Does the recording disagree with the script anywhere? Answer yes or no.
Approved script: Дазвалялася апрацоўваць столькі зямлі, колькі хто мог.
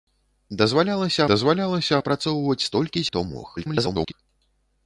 yes